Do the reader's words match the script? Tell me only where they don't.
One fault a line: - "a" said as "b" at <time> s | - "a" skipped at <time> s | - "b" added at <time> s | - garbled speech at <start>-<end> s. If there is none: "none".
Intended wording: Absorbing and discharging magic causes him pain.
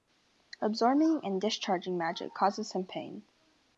none